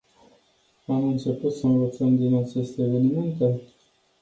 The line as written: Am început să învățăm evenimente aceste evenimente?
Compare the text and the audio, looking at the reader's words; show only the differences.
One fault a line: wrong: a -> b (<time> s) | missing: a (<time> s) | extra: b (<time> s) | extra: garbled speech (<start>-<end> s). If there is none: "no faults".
wrong: evenimente -> din (2.2 s)